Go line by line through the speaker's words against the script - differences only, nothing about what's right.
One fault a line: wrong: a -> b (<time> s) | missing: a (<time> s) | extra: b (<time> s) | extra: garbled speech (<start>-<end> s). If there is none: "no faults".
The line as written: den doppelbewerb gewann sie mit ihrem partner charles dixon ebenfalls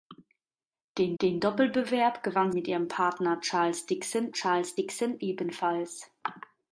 extra: den (1.2 s)
missing: sie (2.5 s)
extra: charles dixon (4.3 s)